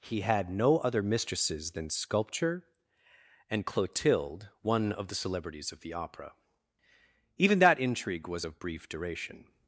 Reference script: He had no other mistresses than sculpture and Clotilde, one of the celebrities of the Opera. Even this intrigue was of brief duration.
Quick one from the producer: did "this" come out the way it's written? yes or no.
no